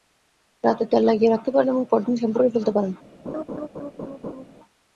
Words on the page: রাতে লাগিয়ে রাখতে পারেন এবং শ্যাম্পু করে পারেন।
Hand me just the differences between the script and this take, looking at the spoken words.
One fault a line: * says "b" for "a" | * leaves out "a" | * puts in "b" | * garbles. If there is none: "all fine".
* puts in "তেল"
* puts in "পরদিন"
* puts in "ফেলতে"